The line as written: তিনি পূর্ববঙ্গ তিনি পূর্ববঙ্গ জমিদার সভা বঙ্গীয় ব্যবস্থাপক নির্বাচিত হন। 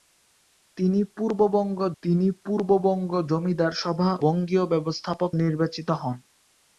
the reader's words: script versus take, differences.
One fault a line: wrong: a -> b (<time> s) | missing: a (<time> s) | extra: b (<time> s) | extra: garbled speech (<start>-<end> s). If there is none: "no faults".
no faults